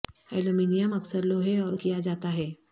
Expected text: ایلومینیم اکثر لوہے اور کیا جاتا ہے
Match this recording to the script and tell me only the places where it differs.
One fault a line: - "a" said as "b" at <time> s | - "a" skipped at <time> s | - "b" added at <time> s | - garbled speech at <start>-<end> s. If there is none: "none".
none